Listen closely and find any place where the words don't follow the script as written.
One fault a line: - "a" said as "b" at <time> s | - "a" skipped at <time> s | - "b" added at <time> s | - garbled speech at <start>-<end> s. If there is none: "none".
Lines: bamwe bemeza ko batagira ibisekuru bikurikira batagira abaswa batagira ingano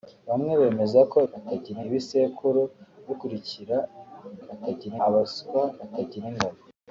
none